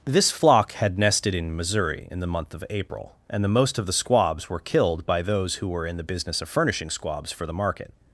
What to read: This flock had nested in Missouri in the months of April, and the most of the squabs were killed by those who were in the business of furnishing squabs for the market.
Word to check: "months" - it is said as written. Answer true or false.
false